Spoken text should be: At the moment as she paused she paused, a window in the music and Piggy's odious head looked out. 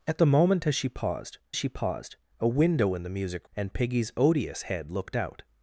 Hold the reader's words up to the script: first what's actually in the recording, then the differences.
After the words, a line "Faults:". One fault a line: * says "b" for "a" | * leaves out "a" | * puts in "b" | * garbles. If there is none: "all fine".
At the moment as she paused she paused, a window in the music and Piggy's odious head looked out.
Faults:
all fine